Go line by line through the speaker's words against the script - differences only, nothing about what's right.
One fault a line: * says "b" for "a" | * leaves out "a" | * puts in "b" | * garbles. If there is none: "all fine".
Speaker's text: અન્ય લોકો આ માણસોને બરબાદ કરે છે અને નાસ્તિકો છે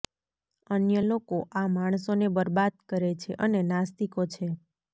all fine